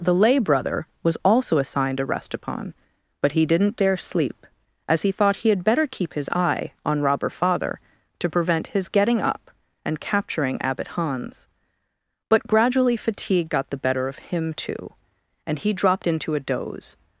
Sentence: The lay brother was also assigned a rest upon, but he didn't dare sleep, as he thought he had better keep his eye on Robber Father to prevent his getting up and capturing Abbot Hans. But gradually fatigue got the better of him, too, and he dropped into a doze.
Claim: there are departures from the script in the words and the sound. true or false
false